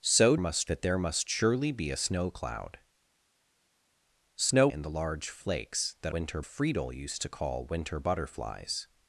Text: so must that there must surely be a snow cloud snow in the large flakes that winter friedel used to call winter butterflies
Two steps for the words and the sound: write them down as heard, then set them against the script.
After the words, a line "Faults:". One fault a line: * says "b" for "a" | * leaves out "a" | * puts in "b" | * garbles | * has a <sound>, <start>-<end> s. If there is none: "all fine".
so must that there must surely be a snow cloud snow in the large flakes that winter friedel used to call winter butterflies
Faults:
all fine